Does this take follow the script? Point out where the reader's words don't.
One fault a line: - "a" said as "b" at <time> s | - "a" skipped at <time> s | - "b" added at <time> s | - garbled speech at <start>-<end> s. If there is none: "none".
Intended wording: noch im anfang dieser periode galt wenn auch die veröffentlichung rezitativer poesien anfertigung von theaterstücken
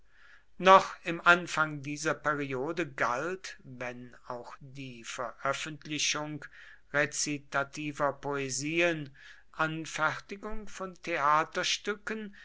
none